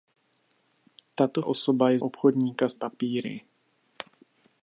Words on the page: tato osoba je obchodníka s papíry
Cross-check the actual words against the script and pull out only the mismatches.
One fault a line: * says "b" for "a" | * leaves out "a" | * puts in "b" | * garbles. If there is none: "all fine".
all fine